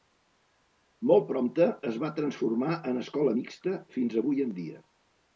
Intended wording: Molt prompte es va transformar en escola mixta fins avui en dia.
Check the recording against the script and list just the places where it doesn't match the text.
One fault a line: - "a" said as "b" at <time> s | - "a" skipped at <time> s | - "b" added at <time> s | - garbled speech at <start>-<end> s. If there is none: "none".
none